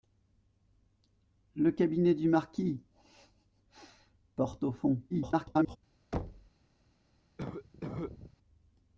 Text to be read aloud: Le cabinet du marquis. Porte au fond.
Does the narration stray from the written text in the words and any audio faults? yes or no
yes